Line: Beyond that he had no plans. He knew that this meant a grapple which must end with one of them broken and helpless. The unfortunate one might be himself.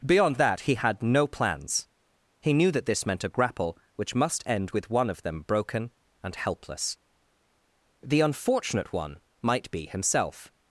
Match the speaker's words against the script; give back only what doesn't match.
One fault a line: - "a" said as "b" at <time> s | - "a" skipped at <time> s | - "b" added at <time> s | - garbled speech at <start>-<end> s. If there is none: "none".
none